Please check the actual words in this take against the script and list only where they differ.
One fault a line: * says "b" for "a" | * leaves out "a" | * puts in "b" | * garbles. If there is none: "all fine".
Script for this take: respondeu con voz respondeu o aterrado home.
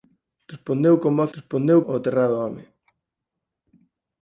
all fine